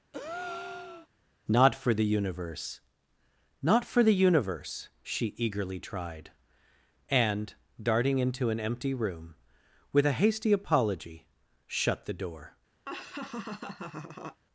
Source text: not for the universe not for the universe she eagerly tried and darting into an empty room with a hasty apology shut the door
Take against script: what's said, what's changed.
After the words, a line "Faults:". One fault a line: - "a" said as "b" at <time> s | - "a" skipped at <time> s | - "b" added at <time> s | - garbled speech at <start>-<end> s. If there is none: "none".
not for the universe not for the universe she eagerly tried and darting into an empty room with a hasty apology shut the door
Faults:
none